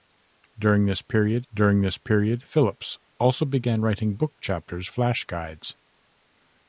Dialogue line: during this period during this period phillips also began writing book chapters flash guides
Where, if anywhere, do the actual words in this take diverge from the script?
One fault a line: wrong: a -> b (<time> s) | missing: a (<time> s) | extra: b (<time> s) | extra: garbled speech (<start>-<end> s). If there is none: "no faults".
no faults